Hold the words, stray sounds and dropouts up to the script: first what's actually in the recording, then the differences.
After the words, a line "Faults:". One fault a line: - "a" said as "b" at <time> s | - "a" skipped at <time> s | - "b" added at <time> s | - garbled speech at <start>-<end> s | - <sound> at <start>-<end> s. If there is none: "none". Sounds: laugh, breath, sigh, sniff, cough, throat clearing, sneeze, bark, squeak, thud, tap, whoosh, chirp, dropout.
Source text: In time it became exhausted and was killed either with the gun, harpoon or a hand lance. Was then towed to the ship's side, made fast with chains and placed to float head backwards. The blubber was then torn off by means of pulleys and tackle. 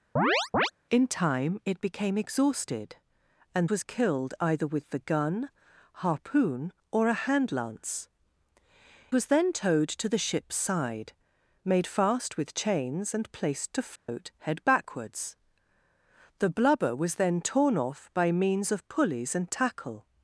In time it became exhausted and was killed either with the gun, harpoon or a hand lance. Was then towed to the ship's side, made fast with chains and placed to float head backwards. The blubber was then torn off by means of pulleys and tackle.
Faults:
- chirp at 0.2-0.7 s
- dropout at 14.0-14.1 s